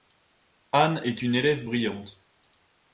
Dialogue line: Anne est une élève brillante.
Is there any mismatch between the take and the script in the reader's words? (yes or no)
no